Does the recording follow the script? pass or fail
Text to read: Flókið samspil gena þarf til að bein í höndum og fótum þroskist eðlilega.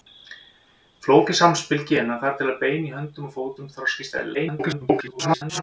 fail